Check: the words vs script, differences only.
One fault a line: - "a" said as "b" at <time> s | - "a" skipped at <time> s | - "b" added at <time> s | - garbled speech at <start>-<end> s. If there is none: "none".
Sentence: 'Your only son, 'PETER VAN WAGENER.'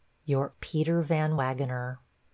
- "only son" skipped at 0.5 s